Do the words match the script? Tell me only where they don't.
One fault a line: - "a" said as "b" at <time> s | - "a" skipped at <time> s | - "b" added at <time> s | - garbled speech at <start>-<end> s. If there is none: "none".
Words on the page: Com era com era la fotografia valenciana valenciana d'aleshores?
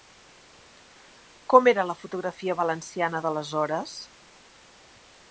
- "com era" skipped at 1.9 s
- "valenciana" skipped at 3.2 s